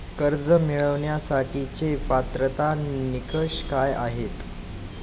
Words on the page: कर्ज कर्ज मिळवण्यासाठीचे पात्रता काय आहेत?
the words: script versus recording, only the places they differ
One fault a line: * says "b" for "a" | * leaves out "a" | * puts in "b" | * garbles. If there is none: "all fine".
* leaves out "कर्ज"
* puts in "निकष"